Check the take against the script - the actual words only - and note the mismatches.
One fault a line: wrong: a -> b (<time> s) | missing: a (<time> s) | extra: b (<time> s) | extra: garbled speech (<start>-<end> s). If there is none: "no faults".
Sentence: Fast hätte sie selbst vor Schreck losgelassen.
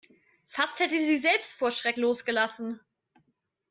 no faults